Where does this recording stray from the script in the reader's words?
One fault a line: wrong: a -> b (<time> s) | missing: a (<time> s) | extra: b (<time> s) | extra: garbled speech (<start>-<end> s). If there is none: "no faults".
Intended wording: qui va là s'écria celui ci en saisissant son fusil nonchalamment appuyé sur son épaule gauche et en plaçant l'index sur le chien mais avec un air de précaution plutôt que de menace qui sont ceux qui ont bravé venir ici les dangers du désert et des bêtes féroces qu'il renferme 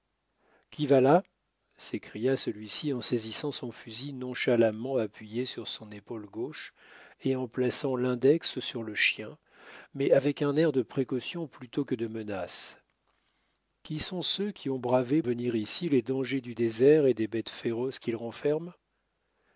no faults